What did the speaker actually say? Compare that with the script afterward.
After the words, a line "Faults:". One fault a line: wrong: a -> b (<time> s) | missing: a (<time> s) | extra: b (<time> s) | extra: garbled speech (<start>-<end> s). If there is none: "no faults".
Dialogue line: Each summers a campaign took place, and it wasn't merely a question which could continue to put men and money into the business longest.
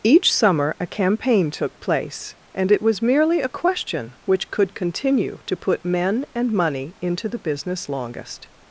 Each summer a campaign took place, and it was merely a question which could continue to put men and money into the business longest.
Faults:
wrong: summers -> summer (0.3 s)
wrong: wasn't -> was (2.8 s)